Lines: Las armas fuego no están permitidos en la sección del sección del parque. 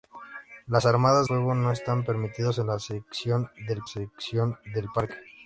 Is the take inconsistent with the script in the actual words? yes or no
no